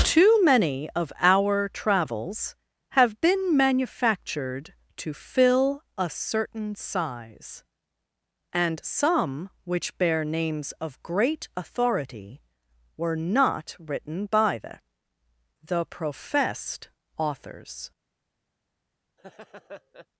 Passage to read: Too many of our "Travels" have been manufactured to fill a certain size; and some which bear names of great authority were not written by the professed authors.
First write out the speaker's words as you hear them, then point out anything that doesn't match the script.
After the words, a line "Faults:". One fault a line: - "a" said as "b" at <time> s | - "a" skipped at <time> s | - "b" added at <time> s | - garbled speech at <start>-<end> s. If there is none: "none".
Too many of our "Travels" have been manufactured to fill a certain size; and some which bear names of great authority were not written by the the professed authors.
Faults:
- "the" added at 15.6 s